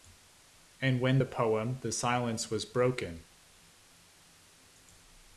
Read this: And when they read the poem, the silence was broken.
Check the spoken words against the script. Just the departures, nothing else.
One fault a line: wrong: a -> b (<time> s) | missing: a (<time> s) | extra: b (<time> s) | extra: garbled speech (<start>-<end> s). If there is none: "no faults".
missing: they read (1.2 s)